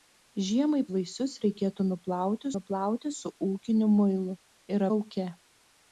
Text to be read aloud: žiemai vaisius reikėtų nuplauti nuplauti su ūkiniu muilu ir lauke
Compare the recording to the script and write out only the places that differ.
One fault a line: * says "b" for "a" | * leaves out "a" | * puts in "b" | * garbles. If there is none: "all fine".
all fine